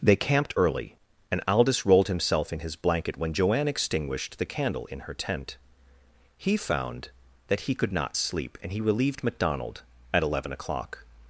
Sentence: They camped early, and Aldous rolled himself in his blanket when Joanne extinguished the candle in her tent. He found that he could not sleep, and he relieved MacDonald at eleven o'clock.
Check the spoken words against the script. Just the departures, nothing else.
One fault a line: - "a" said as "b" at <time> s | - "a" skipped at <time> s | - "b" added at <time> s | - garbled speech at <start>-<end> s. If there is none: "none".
none